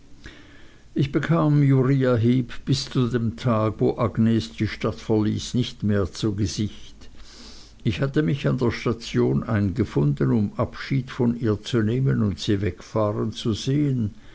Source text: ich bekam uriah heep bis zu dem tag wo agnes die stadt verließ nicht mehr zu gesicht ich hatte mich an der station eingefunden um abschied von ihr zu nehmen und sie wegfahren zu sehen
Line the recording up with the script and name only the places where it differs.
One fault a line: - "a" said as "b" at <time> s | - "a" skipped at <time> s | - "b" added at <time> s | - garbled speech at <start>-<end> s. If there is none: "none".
none